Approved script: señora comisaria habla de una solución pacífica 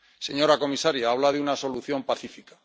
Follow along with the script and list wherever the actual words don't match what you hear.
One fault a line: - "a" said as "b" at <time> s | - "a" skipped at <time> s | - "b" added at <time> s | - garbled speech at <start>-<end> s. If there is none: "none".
none